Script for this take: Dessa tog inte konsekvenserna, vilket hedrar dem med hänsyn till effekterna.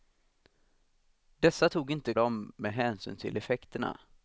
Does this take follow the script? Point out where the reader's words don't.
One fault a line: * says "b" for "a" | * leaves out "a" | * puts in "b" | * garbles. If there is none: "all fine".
* leaves out "konsekvenserna vilket hedrar"